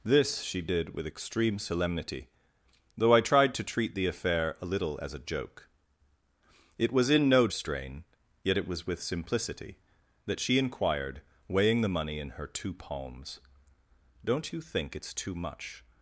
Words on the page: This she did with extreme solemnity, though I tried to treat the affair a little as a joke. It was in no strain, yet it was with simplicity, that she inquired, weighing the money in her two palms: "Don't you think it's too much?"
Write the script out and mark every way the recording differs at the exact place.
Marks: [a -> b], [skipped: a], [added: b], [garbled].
This she did with extreme solemnity, though I tried to treat the affair a little as a joke. It was in no strain, yet it was with simplicity, that she inquired, weighing the money in her two palms: "Don't you think it's too much?"